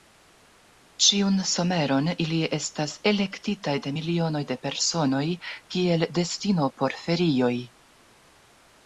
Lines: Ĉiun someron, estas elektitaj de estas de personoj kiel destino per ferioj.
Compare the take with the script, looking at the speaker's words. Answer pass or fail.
fail